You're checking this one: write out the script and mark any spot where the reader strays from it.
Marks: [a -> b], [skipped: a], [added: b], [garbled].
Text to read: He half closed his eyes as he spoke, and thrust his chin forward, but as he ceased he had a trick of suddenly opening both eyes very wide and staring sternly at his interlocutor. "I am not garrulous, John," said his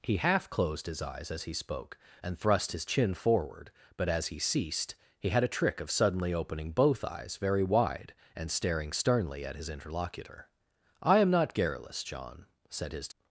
He half closed his eyes as he spoke, and thrust his chin forward, but as he ceased he had a trick of suddenly opening both eyes very wide and staring sternly at his interlocutor. "I am not garrulous, John," said his